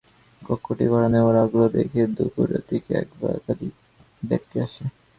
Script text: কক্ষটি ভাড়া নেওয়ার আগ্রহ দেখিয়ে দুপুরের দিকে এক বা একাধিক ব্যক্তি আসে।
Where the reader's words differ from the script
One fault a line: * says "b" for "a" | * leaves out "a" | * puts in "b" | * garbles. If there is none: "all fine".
all fine